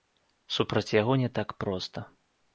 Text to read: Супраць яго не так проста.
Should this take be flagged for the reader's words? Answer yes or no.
no